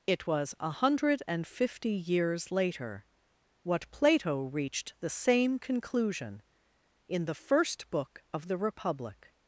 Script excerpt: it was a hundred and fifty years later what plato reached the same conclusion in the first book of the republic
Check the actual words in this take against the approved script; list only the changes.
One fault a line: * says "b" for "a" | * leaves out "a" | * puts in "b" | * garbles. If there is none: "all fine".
all fine